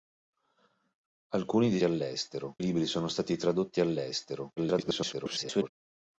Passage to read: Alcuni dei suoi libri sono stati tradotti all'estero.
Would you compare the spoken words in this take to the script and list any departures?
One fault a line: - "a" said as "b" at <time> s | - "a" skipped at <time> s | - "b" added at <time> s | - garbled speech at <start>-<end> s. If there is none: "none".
- "suoi" said as "all'estero" at 1.8 s
- garbled speech at 4.6-5.7 s